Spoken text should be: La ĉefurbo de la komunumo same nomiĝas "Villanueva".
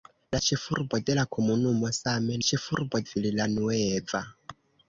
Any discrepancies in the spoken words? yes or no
yes